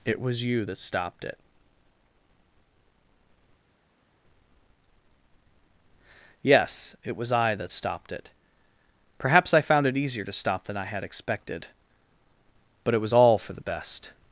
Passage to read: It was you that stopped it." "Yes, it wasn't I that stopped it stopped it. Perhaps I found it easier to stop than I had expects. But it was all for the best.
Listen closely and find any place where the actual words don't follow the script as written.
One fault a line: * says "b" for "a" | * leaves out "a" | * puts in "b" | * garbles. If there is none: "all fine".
* says "was" for "wasn't"
* leaves out "stopped it"
* says "expected" for "expects"